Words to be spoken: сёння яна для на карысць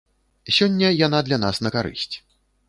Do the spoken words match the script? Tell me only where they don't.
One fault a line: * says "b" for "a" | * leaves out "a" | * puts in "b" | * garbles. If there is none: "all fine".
* puts in "нас"